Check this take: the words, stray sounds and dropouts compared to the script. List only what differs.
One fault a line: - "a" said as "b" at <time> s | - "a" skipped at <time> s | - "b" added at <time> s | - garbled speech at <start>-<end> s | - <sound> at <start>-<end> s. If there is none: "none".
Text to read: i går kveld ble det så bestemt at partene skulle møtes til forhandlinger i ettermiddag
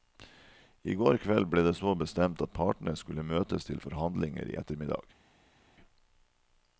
none